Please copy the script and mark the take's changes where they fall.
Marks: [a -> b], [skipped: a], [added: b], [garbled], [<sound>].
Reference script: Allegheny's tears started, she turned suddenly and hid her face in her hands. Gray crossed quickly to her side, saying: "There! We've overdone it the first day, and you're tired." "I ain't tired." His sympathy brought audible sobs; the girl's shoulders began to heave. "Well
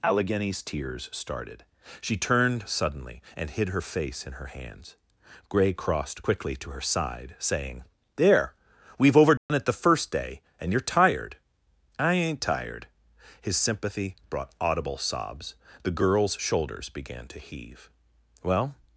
Allegheny's tears started, she turned suddenly and hid her face in her hands. Gray crossed quickly to her side, saying: "There! We've overdone [dropout] it the first day, and you're tired." "I ain't tired." His sympathy brought audible sobs; the girl's shoulders began to heave. "Well